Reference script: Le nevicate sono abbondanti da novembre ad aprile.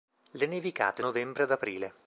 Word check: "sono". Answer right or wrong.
wrong